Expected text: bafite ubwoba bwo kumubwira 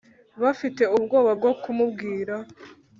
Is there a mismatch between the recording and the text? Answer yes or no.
no